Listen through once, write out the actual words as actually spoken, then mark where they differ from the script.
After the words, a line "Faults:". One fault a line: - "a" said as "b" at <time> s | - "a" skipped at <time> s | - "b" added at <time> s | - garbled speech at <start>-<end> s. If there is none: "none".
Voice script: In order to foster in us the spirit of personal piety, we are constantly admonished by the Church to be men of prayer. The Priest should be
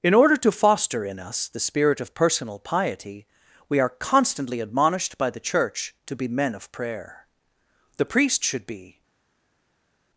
In order to foster in us the spirit of personal piety, we are constantly admonished by the Church to be men of prayer. The Priest should be
Faults:
none